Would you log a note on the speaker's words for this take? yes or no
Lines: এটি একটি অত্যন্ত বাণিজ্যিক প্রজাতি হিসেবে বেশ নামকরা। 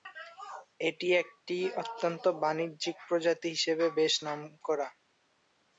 no